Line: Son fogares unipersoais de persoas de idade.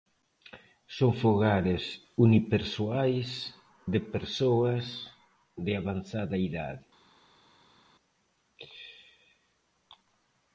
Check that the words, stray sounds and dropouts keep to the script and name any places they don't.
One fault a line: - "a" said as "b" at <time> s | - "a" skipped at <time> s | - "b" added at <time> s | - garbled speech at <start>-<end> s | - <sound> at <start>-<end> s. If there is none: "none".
- "avanzada" added at 5.8 s